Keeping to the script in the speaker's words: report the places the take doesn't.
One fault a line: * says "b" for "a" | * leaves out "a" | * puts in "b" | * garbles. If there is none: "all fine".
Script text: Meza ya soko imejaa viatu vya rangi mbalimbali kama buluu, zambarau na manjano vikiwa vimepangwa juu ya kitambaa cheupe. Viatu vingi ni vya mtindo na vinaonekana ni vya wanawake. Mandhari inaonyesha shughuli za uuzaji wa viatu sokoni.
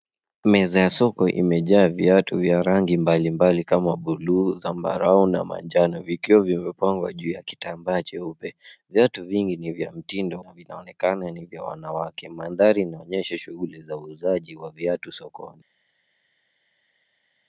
all fine